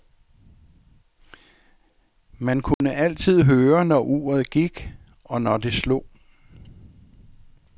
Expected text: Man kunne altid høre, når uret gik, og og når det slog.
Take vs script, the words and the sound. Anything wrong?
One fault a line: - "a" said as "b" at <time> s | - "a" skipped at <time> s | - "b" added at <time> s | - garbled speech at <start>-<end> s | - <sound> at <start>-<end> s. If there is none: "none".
- dropout at 2.7-2.8 s
- "og" skipped at 5.4 s